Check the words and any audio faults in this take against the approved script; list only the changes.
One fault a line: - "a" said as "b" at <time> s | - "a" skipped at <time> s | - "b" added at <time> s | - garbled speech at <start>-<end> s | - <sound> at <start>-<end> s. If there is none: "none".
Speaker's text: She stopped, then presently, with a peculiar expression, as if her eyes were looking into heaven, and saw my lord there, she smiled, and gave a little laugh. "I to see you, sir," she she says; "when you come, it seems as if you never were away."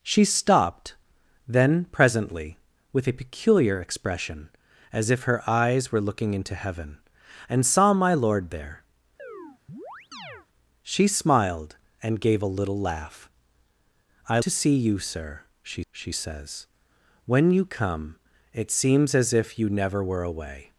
- chirp at 9.2-10.5 s